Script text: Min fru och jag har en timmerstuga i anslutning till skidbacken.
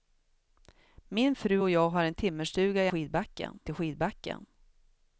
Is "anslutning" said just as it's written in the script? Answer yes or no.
no